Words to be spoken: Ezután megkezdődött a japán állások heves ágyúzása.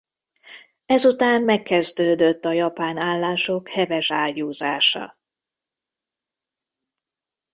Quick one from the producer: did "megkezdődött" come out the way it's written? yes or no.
yes